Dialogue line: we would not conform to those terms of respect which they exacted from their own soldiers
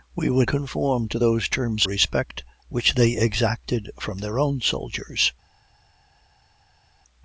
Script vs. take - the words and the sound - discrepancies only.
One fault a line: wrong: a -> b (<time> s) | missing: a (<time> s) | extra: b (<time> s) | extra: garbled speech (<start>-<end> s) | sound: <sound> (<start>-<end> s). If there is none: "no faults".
missing: not (0.5 s)
missing: of (1.9 s)